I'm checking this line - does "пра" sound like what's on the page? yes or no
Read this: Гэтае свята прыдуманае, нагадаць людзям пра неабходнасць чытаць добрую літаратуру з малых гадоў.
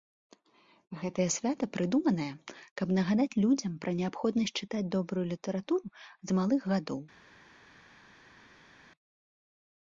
yes